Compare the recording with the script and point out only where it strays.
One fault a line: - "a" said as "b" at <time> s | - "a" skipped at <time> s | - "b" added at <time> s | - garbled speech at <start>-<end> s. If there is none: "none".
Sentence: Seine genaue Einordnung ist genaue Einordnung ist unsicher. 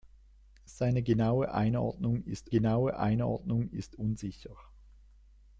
none